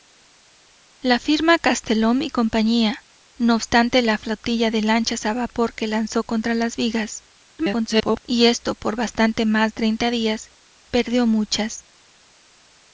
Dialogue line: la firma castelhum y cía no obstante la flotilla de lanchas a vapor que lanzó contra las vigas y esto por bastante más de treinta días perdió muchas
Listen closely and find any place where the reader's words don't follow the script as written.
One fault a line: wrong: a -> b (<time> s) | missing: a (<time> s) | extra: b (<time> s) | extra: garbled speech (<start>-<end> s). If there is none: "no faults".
extra: garbled speech (7.6-8.2 s)
missing: de (9.7 s)